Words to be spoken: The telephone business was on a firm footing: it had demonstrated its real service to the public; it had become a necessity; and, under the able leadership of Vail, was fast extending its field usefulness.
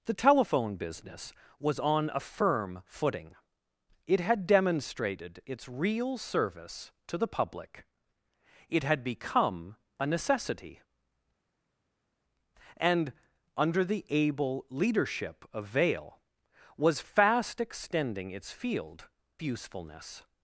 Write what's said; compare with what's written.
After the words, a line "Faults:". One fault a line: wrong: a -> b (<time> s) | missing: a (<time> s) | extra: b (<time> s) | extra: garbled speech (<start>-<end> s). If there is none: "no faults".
The telephone business was on a firm footing: it had demonstrated its real service to the public; it had become a necessity; and, under the able leadership of Vail, was fast extending its field usefulness.
Faults:
no faults